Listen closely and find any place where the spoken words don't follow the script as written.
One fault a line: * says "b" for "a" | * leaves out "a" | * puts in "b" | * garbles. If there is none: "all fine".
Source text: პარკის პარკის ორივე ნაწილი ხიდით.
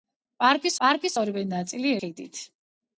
all fine